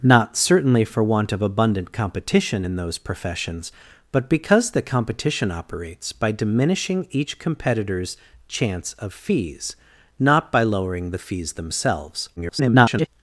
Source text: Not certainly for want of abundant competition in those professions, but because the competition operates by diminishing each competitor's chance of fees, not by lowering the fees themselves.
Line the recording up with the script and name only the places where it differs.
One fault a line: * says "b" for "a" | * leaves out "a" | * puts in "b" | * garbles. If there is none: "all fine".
* garbles